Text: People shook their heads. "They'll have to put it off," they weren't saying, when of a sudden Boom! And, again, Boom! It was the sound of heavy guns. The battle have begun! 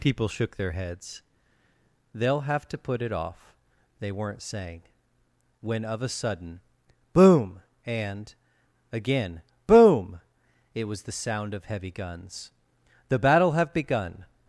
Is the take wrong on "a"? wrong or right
right